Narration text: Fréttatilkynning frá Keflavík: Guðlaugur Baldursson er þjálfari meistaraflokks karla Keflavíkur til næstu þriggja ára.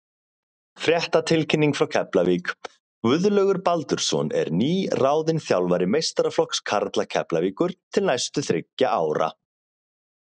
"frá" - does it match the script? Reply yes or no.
yes